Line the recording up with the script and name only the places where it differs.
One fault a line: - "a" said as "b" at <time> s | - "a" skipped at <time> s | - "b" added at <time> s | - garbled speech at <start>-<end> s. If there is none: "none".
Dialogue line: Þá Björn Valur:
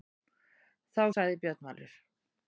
- "sagði" added at 1.1 s